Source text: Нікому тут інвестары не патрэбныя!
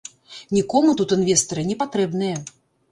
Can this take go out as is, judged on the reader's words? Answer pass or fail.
pass